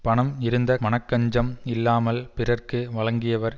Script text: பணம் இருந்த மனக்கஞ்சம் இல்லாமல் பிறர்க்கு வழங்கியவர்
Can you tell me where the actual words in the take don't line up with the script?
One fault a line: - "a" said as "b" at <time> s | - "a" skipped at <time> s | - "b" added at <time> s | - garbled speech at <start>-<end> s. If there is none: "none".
none